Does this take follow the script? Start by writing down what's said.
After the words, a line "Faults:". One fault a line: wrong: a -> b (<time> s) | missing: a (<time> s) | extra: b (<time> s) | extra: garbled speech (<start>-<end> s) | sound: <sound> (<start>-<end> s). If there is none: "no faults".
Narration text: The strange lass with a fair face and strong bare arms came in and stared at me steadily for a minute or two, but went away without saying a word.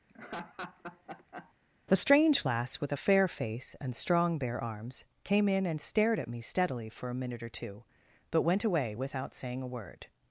The strange lass with a fair face and strong bare arms came in and stared at me steadily for a minute or two, but went away without saying a word.
Faults:
sound: laugh (0.1-1.5 s)